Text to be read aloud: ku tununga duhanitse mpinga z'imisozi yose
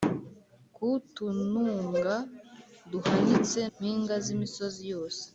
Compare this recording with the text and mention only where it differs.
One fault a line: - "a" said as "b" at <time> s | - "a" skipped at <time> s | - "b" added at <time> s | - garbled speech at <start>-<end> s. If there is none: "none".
none